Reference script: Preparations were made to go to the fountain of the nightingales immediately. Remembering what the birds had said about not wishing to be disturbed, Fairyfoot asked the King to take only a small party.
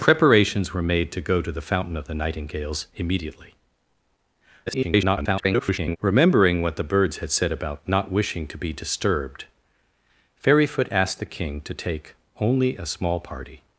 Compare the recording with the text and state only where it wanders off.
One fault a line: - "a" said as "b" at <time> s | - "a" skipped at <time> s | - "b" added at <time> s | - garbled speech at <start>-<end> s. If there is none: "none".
- garbled speech at 4.7-6.0 s